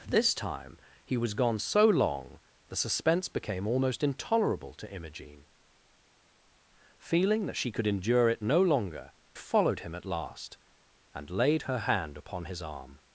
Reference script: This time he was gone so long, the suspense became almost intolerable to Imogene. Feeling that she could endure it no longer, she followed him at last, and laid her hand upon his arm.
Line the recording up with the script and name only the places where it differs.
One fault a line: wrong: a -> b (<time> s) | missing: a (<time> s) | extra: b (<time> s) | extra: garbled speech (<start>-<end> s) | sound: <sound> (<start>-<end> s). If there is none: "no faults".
missing: she (9.1 s)